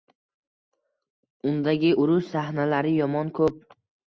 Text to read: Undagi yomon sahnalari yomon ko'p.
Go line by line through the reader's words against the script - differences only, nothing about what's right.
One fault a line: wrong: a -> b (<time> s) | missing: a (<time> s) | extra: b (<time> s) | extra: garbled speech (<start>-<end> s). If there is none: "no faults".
wrong: yomon -> urush (2.0 s)